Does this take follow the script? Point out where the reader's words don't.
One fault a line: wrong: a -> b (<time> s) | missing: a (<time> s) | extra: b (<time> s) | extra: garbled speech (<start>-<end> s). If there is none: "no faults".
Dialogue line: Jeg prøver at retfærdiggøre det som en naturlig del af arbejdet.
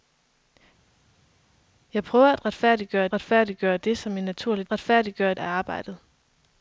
extra: retfærdiggøre (3.1 s)
wrong: del -> retfærdiggøre (4.7 s)